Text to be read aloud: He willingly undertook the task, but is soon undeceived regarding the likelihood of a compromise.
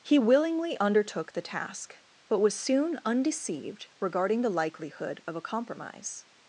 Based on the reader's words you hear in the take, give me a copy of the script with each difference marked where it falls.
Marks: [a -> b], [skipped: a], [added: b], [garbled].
He willingly undertook the task, but [is -> was] soon undeceived regarding the likelihood of a compromise.